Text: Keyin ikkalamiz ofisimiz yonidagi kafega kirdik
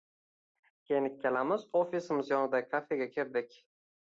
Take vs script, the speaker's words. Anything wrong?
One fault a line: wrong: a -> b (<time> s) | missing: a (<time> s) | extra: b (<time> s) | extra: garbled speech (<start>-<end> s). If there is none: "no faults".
no faults